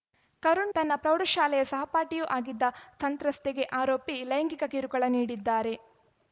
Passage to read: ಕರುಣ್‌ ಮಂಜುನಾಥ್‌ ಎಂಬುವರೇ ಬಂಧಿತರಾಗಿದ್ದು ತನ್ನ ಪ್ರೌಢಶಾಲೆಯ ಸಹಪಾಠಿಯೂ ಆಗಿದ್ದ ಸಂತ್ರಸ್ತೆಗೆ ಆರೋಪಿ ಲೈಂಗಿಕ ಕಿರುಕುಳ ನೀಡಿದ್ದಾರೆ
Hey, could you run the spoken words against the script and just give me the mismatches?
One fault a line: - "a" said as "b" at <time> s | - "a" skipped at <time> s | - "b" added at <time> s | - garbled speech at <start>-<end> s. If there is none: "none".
- "ಮಂಜುನಾಥ್ ಎಂಬುವರೇ ಬಂಧಿತರಾಗಿದ್ದು" skipped at 0.7 s